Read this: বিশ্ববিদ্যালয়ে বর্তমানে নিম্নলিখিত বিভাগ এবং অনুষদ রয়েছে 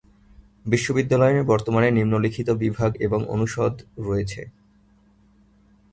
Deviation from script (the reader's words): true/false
false